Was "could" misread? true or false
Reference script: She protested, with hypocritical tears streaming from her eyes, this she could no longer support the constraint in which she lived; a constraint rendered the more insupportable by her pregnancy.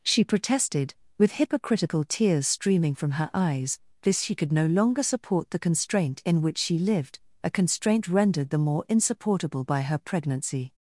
false